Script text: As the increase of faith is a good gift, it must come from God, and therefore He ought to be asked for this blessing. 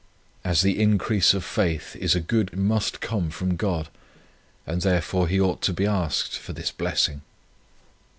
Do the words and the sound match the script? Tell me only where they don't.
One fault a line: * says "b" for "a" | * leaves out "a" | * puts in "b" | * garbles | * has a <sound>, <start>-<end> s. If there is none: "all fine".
* leaves out "gift it"